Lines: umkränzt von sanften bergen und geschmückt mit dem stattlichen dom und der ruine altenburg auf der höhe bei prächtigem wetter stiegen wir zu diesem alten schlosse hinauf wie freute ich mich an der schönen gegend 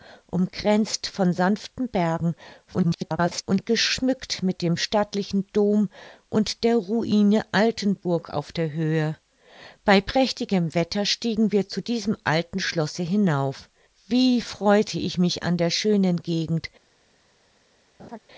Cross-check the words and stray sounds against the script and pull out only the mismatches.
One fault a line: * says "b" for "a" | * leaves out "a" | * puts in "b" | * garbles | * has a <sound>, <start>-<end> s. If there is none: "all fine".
* garbles
* has a laugh, 18.0-18.2 s